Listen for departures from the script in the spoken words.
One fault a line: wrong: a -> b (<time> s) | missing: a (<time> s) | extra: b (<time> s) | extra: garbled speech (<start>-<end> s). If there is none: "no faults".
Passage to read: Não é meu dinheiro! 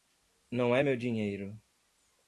no faults